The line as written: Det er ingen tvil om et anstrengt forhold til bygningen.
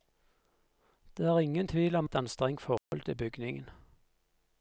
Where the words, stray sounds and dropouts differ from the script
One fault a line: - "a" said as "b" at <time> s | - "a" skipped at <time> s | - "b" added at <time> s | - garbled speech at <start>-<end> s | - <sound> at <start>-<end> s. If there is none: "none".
- dropout at 2.8-2.9 s